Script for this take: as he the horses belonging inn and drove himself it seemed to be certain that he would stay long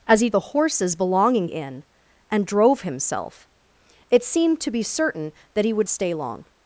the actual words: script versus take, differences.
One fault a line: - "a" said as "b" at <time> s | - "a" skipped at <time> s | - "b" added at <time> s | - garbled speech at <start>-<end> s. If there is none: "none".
none